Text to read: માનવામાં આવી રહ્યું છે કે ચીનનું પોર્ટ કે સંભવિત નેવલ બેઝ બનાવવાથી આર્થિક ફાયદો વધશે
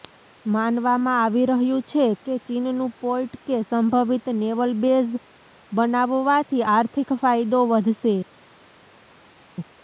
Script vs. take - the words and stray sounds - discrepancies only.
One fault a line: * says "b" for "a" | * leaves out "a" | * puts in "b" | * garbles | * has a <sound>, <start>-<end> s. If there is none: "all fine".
all fine